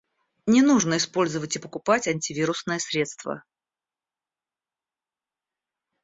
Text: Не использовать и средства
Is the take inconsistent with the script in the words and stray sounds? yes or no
yes